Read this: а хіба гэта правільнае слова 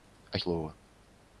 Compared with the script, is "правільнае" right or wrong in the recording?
wrong